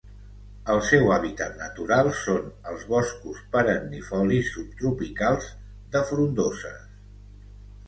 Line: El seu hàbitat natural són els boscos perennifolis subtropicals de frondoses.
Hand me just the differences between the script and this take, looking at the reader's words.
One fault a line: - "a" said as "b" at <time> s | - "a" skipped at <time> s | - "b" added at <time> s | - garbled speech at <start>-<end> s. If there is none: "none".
none